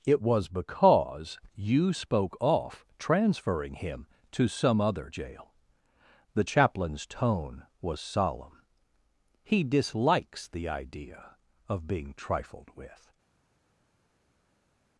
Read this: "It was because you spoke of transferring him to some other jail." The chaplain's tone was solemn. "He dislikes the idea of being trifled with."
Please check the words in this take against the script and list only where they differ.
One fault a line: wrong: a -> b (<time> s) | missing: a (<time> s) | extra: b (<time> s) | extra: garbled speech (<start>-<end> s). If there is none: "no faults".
wrong: of -> off (2.4 s)